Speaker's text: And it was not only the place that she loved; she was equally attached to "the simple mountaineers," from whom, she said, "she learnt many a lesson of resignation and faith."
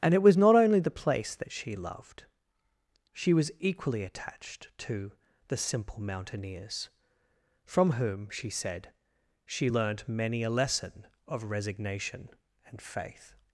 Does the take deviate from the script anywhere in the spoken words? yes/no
no